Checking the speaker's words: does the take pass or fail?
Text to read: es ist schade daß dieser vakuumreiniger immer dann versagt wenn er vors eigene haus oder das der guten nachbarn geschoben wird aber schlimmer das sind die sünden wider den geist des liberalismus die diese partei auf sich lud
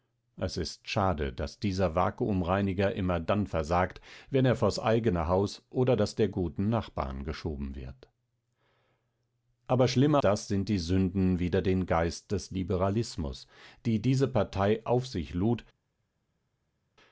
pass